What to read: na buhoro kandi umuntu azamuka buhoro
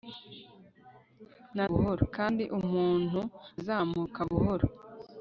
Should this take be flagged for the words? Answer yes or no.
no